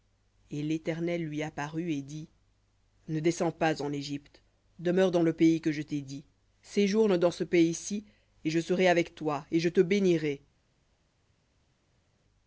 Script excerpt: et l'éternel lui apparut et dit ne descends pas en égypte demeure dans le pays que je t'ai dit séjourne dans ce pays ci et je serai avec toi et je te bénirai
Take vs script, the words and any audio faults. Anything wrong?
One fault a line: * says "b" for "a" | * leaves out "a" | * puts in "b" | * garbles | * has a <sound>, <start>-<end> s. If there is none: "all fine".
all fine